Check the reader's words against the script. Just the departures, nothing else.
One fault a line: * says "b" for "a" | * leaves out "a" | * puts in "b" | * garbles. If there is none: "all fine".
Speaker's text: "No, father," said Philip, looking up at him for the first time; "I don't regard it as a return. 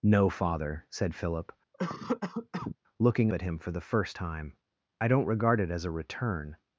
* leaves out "up"